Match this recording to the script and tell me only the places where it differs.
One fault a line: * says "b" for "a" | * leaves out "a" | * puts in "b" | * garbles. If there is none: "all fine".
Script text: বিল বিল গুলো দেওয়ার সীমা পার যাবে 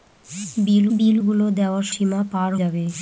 all fine